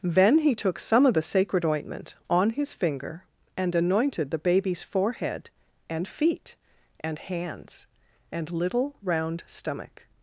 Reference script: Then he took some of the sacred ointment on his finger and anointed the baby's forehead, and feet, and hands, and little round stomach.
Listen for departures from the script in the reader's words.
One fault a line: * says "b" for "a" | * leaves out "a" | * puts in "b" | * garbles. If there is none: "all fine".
all fine